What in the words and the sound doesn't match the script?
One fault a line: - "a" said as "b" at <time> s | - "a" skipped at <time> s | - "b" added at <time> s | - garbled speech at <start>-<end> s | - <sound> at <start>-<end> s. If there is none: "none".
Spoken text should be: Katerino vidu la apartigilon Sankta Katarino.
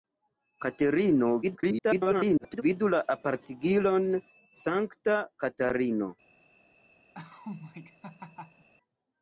- garbled speech at 1.4-2.6 s
- laugh at 7.1-8.7 s